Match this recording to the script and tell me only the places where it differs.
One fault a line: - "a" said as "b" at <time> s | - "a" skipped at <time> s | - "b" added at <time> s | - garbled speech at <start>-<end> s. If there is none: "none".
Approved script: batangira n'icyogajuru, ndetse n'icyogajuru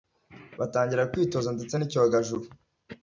- "n'icyogajuru" said as "kwitoza" at 1.1 s